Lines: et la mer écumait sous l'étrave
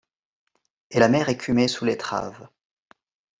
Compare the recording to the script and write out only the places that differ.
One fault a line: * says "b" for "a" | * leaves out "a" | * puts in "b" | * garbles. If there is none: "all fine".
all fine